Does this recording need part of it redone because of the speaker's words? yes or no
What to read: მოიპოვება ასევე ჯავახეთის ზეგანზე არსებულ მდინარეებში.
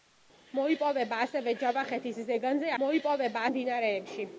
yes